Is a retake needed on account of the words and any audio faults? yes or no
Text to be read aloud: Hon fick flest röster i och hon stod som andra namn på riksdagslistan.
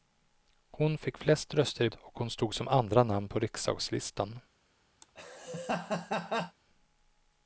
yes